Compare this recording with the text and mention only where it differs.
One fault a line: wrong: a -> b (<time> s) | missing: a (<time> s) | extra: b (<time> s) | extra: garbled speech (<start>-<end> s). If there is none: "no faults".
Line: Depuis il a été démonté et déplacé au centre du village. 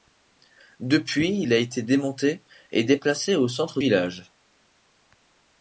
missing: du (3.8 s)